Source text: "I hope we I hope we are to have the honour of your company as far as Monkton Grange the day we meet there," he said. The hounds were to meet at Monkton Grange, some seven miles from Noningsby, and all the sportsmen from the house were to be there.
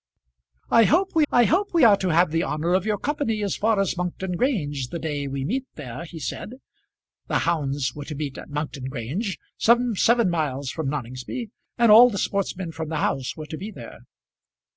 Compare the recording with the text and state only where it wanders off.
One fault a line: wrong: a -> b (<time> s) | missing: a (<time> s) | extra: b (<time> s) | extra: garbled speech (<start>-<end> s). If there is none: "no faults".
no faults